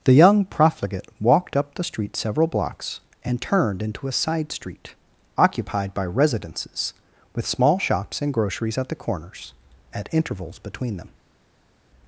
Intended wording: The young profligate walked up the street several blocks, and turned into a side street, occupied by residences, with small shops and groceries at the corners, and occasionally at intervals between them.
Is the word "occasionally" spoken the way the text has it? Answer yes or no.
no